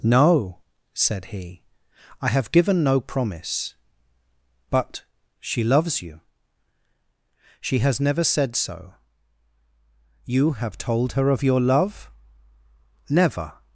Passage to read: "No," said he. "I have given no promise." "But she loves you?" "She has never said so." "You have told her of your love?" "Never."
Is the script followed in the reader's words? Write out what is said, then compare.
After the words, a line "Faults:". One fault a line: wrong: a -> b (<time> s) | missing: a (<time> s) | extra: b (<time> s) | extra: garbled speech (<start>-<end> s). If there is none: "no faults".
"No," said he. "I have given no promise." "But she loves you?" "She has never said so." "You have told her of your love?" "Never."
Faults:
no faults